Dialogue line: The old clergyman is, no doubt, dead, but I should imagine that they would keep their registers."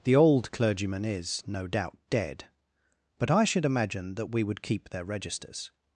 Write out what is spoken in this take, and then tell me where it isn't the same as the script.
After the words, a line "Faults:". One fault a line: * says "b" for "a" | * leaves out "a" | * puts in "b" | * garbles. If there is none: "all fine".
The old clergyman is, no doubt, dead, but I should imagine that we would keep their registers."
Faults:
* says "we" for "they"